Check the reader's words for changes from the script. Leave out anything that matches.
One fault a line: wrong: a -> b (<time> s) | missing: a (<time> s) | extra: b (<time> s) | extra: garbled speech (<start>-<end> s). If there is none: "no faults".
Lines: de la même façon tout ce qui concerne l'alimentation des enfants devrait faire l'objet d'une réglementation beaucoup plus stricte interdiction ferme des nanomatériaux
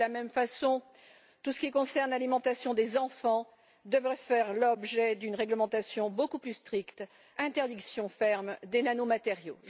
no faults